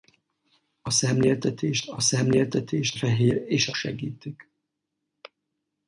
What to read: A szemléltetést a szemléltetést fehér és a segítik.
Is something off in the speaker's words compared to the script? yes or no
no